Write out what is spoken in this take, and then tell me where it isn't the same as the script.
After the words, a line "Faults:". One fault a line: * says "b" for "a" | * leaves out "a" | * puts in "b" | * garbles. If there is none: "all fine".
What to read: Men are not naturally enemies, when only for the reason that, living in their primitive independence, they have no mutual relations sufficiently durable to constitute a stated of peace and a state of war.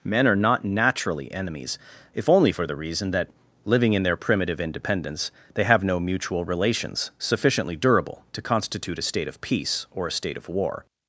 Men are not naturally enemies, if only for the reason that, living in their primitive independence, they have no mutual relations sufficiently durable to constitute a state of peace or a state of war.
Faults:
* says "if" for "when"
* says "state" for "stated"
* says "or" for "and"